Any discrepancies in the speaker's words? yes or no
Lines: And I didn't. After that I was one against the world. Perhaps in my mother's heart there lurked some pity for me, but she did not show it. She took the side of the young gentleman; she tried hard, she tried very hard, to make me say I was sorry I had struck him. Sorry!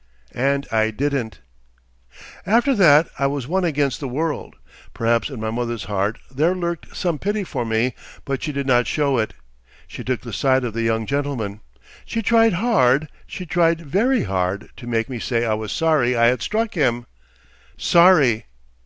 no